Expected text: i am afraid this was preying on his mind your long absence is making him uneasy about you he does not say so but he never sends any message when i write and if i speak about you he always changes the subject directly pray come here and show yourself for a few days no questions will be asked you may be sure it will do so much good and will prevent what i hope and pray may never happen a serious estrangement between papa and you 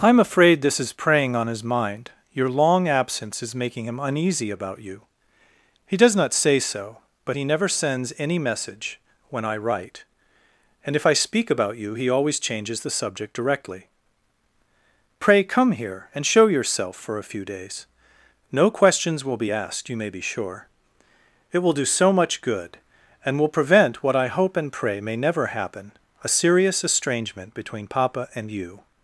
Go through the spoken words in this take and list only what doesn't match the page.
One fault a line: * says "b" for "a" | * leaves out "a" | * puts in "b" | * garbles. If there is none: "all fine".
* says "is" for "was"